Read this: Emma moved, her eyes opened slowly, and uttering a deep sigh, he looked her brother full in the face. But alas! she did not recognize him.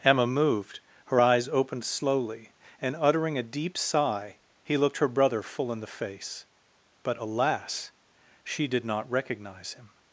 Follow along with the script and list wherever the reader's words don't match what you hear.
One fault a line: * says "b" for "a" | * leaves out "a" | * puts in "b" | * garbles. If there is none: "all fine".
all fine